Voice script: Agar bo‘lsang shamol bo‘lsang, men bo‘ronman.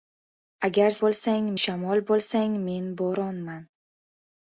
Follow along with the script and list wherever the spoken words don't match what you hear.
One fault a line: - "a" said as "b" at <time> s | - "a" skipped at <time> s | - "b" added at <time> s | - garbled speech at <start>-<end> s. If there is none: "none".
none